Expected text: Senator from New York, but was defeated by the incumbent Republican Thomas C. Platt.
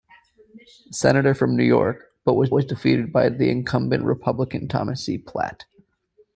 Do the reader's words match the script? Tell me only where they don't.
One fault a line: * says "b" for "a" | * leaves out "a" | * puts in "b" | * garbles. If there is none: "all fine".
* puts in "was"